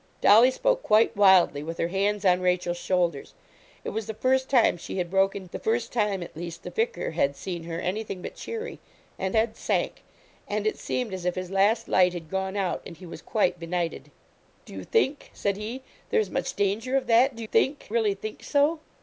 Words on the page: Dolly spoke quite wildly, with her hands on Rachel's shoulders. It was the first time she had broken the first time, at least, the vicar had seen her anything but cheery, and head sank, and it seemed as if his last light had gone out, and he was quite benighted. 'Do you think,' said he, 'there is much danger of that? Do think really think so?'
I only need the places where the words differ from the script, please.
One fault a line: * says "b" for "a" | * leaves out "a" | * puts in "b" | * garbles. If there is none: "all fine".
all fine